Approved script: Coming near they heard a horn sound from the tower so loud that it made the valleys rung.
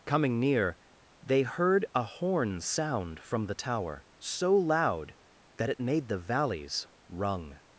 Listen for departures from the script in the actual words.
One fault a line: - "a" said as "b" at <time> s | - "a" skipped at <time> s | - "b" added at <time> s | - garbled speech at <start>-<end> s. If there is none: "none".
none